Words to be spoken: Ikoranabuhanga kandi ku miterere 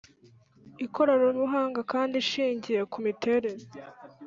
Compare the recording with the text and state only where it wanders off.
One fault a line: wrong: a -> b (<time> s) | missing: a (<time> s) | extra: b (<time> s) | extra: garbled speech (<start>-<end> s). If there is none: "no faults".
extra: ishingiye (2.2 s)